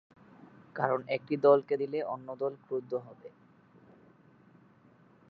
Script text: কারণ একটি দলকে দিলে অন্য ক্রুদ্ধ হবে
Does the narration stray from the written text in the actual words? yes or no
yes